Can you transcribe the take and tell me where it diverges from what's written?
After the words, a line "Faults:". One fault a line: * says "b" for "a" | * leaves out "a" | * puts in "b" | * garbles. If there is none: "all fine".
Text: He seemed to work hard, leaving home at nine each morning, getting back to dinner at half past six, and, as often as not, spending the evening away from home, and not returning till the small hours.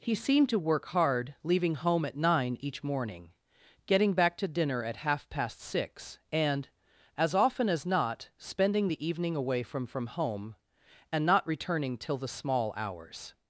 He seemed to work hard, leaving home at nine each morning, getting back to dinner at half past six, and, as often as not, spending the evening away from from home, and not returning till the small hours.
Faults:
* puts in "from"